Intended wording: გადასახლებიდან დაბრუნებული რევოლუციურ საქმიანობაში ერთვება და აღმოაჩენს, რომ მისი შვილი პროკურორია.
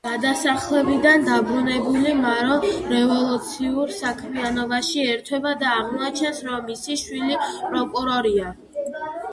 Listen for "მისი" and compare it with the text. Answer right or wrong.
right